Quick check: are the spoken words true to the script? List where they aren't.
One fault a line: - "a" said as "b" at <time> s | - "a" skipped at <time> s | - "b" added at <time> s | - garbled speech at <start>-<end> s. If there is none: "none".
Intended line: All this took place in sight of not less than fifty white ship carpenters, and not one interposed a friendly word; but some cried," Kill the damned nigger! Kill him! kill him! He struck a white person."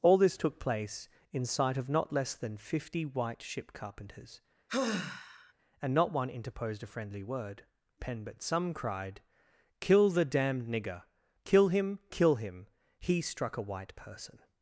- "pen" added at 8.0 s